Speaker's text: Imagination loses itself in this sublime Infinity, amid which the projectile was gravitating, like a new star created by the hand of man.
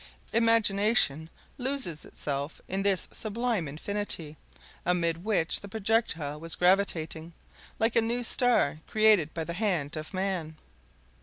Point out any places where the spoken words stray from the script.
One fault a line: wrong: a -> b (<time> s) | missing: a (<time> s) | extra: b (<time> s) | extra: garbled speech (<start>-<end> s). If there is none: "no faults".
no faults